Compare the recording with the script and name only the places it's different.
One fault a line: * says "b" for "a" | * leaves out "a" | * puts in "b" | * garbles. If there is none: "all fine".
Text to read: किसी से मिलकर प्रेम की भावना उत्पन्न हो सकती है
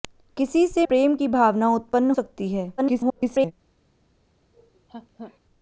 * leaves out "मिलकर"
* leaves out "हो"
* garbles